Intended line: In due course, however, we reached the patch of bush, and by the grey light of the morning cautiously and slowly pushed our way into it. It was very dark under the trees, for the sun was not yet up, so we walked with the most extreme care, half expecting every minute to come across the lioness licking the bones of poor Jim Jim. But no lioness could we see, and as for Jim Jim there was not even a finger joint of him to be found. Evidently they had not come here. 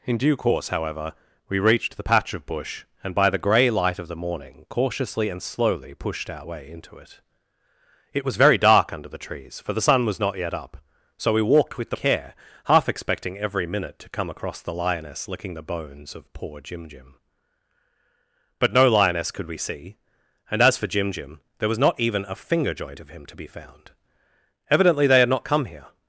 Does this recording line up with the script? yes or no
no